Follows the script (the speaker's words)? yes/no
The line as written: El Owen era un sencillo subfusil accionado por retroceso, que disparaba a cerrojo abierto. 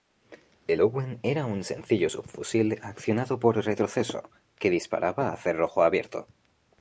yes